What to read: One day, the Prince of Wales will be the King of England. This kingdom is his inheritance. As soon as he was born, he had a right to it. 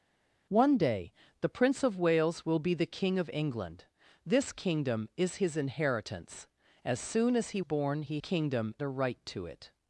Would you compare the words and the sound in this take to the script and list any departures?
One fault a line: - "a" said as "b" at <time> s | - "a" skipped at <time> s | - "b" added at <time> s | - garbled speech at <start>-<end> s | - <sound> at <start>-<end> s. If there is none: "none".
- "was" skipped at 7.6 s
- "had" said as "kingdom" at 8.2 s